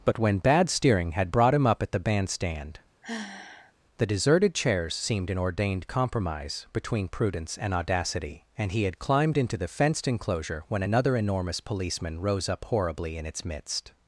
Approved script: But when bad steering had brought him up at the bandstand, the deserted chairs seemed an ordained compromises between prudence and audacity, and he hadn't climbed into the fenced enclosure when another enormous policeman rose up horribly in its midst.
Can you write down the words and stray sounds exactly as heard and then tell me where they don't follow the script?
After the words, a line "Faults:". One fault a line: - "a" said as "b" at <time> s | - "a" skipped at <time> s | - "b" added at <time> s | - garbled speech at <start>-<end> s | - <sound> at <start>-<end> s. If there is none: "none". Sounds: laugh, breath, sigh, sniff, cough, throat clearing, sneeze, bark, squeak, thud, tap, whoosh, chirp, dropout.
But when bad steering had brought him up at the bandstand, the deserted chairs seemed an ordained compromise between prudence and audacity, and he had climbed into the fenced enclosure when another enormous policeman rose up horribly in its midst.
Faults:
- sigh at 3.0-3.7 s
- "compromises" said as "compromise" at 5.9 s
- "hadn't" said as "had" at 8.8 s